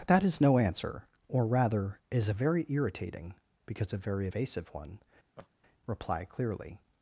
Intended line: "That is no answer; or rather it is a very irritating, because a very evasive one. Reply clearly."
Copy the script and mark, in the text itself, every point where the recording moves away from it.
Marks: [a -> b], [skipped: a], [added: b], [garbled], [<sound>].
"That is no answer; or rather [skipped: it] is a very irritating, because a very evasive one. [laugh] Reply clearly."